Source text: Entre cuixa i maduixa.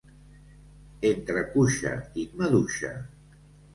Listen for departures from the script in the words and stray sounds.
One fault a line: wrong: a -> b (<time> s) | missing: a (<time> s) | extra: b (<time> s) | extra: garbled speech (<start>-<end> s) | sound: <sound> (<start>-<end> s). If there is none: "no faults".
no faults